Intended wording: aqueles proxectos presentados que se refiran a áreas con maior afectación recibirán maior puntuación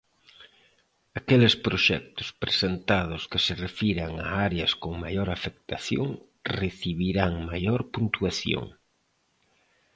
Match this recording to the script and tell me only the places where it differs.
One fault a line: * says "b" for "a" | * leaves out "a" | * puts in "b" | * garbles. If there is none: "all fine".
all fine